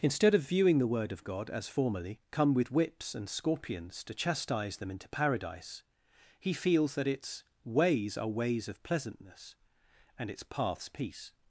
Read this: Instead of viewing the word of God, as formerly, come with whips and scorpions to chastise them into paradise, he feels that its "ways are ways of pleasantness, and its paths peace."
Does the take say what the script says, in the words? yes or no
yes